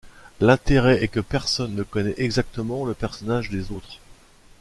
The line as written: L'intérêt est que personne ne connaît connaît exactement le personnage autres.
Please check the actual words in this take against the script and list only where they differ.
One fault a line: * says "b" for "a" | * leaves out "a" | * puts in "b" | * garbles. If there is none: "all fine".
* leaves out "connaît"
* puts in "des"